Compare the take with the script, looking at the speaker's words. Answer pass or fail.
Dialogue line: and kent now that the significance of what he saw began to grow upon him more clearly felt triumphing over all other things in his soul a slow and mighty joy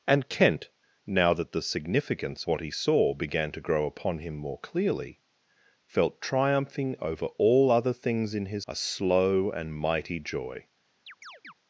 fail